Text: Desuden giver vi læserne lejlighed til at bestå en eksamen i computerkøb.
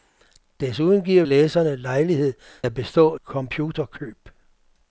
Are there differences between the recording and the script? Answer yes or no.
yes